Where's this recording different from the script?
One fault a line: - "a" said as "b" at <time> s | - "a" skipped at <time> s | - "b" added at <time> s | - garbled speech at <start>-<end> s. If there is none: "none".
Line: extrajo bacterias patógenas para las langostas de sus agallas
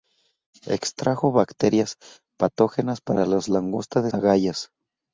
- "sus" skipped at 4.1 s